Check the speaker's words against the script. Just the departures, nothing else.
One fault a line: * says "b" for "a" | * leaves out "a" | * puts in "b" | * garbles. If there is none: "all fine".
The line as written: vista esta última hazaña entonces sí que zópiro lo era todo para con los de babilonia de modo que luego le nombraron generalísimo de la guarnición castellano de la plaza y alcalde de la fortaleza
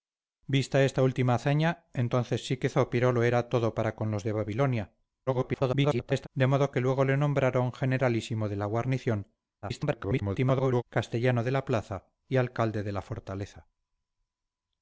* garbles
* garbles